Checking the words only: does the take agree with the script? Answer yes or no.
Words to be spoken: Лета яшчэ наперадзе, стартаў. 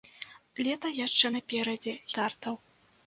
yes